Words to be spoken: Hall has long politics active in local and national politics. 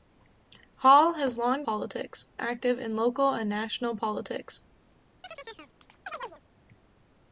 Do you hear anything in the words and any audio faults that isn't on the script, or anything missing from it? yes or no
yes